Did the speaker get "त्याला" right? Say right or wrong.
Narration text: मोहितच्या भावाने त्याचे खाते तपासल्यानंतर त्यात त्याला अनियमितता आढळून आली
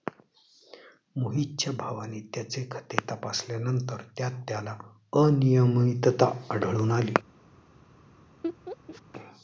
right